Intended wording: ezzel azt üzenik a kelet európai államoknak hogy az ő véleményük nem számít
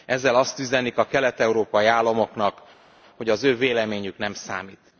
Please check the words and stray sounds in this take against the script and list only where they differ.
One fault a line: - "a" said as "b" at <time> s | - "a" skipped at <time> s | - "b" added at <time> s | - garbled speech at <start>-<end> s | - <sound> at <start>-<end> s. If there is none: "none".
none